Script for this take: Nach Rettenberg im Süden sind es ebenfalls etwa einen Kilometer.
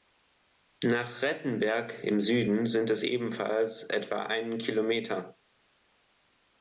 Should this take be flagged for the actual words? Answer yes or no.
no